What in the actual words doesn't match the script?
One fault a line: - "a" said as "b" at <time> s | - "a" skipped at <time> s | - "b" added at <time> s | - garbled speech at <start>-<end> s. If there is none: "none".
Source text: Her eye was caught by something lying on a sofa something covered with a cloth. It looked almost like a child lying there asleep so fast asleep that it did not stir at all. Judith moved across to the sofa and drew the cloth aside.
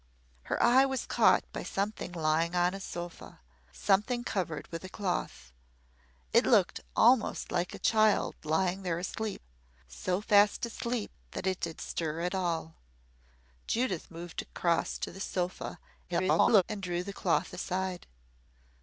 - "not" skipped at 11.8 s
- garbled speech at 16.1-16.6 s